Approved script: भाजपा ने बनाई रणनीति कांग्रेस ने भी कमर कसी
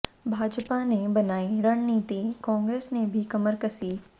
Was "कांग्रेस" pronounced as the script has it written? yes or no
yes